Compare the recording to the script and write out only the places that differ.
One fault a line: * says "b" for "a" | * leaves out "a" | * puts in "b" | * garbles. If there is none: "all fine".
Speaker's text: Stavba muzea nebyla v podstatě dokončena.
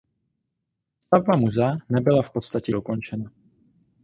all fine